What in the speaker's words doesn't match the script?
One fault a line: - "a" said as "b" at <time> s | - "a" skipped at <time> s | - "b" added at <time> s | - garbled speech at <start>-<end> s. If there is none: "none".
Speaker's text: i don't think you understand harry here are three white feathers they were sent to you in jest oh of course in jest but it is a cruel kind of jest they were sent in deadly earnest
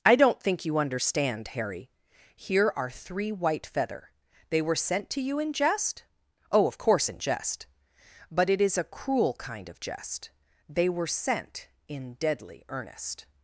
- "feathers" said as "feather" at 3.6 s